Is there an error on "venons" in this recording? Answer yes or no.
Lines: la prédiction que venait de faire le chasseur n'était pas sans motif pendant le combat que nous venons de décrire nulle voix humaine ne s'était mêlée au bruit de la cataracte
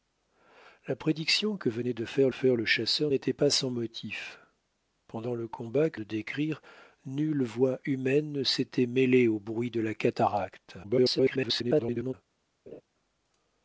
yes